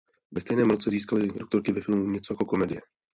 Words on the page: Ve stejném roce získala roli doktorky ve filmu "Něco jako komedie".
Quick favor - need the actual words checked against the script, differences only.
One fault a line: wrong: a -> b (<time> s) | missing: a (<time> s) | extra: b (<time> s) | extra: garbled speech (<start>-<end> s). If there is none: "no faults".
missing: roli (1.2 s)